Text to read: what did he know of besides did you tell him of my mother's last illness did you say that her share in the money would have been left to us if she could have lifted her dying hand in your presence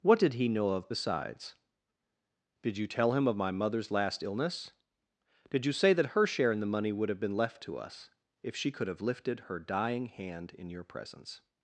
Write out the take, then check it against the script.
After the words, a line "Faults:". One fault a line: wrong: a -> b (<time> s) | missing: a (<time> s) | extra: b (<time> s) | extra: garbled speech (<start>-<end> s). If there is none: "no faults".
what did he know of besides did you tell him of my mother's last illness did you say that her share in the money would have been left to us if she could have lifted her dying hand in your presence
Faults:
no faults